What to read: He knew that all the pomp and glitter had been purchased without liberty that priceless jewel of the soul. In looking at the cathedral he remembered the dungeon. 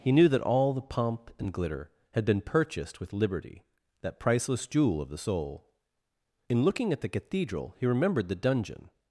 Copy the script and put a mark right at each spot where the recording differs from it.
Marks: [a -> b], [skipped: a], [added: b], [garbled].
He knew that all the pomp and glitter had been purchased [without -> with] liberty that priceless jewel of the soul. In looking at the cathedral he remembered the dungeon.